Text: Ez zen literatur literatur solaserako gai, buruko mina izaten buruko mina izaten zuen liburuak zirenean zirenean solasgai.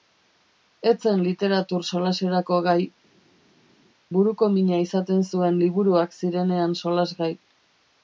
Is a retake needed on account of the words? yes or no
yes